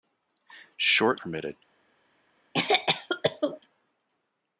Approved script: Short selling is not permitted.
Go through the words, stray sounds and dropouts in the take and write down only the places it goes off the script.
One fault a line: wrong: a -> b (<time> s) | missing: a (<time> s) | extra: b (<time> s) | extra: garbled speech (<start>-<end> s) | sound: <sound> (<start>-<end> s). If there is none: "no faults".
missing: selling is not (1.2 s)
sound: cough (2.5-3.6 s)